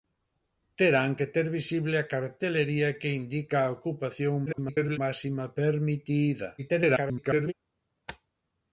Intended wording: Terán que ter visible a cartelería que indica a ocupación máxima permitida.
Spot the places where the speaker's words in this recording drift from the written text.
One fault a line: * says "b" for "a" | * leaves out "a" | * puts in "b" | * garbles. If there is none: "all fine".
* garbles
* garbles